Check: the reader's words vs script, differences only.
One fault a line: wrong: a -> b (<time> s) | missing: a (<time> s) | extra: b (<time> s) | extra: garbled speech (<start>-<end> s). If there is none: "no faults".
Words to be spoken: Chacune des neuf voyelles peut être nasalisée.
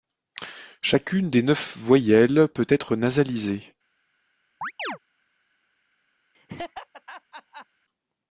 no faults